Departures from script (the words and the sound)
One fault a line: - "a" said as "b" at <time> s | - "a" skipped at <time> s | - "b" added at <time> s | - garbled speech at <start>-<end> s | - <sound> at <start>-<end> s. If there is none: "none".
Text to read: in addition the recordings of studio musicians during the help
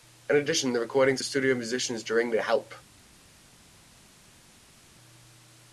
none